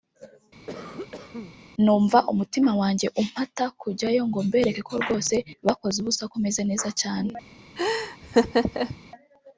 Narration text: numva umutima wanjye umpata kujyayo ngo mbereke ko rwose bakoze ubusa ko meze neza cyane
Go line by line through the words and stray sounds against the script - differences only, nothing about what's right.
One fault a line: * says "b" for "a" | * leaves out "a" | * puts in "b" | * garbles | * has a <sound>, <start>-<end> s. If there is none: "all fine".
* has a cough, 0.7-1.6 s
* has a laugh, 7.8-9.0 s